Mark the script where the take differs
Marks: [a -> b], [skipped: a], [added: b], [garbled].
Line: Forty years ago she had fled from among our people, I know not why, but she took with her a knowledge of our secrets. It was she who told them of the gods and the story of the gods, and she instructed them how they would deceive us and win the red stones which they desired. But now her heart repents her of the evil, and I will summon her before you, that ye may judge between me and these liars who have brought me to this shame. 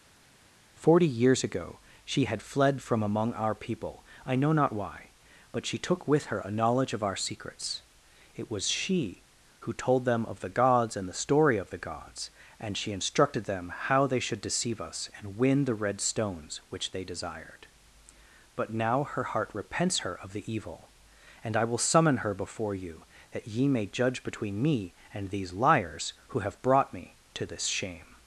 Forty years ago she had fled from among our people, I know not why, but she took with her a knowledge of our secrets. It was she who told them of the gods and the story of the gods, and she instructed them how they [would -> should] deceive us and win the red stones which they desired. But now her heart repents her of the evil, and I will summon her before you, that ye may judge between me and these liars who have brought me to this shame.